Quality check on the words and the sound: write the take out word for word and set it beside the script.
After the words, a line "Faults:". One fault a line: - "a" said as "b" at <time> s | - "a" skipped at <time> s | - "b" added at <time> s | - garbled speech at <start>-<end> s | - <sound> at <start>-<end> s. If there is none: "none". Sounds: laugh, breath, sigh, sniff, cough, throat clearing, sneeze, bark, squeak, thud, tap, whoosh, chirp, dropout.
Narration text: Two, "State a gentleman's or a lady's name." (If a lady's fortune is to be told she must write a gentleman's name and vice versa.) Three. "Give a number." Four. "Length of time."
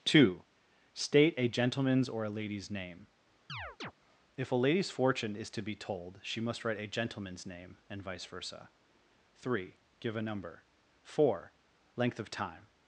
Two, "State a gentleman's or a lady's name." (If a lady's fortune is to be told she must write a gentleman's name and vice versa.) Three. "Give a number." Four. "Length of time."
Faults:
- chirp at 3.5-3.9 s